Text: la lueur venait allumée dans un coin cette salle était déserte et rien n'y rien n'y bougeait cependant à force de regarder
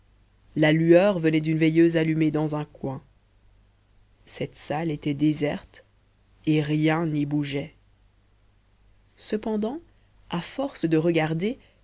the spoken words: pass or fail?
fail